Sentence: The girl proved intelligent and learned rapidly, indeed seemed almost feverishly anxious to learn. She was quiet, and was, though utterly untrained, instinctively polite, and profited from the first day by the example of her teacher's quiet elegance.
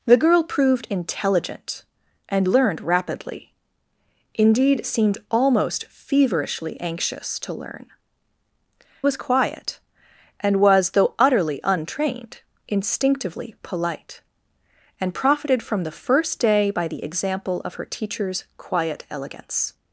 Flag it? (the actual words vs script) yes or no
yes